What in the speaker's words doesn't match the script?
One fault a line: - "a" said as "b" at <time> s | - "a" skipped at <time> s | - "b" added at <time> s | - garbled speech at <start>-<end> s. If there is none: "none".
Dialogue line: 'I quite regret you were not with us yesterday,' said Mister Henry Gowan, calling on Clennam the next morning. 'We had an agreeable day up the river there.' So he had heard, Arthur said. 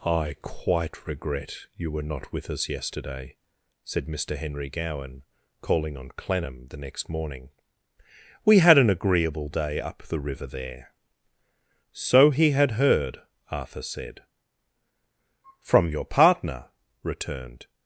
- "From your partner returned" added at 15.6 s